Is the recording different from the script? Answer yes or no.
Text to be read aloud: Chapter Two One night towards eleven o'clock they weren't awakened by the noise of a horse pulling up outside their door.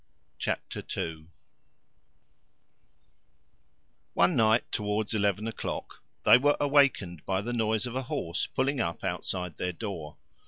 yes